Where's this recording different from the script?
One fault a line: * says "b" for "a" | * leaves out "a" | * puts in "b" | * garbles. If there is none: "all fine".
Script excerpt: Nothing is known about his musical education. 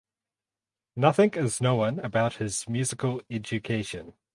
all fine